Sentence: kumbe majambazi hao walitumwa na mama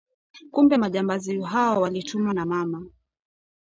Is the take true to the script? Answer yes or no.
yes